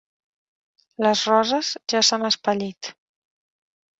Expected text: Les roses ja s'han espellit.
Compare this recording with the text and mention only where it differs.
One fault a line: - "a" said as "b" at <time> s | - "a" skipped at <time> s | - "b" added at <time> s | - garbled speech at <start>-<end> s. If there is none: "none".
none